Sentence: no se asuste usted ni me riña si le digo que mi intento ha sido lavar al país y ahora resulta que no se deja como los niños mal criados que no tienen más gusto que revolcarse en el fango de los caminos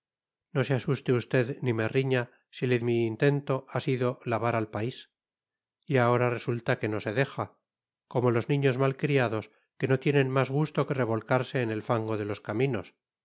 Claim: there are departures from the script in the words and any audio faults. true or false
true